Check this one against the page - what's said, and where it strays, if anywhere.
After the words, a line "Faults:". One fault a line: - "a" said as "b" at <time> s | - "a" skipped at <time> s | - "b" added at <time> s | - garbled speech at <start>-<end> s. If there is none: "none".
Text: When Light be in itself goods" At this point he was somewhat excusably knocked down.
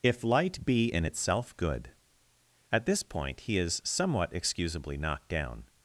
If Light be in itself good" At this point he is somewhat excusably knocked down.
Faults:
- "When" said as "If" at 0.0 s
- "goods" said as "good" at 1.6 s
- "was" said as "is" at 3.6 s